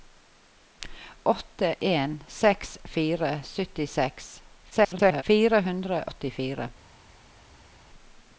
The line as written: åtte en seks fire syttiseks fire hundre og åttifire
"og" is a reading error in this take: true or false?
true